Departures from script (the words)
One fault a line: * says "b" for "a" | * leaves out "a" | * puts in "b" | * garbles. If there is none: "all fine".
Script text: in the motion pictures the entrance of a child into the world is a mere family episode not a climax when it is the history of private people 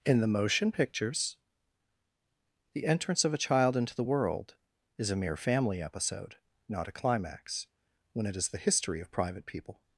all fine